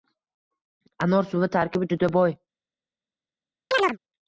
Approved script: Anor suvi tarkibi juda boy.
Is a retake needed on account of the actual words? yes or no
no